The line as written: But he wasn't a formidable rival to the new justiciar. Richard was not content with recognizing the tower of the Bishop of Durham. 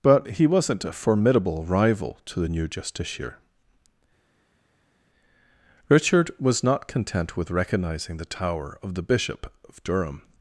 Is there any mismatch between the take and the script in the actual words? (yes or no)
no